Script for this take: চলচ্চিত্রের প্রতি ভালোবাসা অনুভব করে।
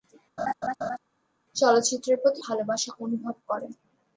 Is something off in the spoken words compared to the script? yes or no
no